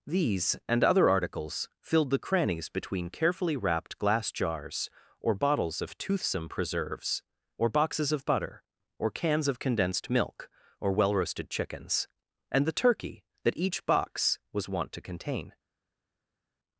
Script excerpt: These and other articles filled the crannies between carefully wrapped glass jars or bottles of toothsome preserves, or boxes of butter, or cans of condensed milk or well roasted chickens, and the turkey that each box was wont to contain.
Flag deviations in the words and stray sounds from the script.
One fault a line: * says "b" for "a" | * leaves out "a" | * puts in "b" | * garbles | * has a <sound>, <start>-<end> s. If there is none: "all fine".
all fine